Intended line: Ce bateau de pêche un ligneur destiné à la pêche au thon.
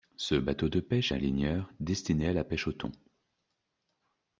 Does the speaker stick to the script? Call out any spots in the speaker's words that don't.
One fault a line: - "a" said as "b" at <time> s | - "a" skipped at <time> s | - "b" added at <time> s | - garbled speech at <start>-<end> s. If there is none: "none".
none